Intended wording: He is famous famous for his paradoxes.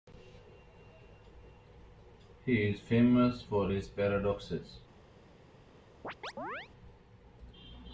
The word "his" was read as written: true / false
true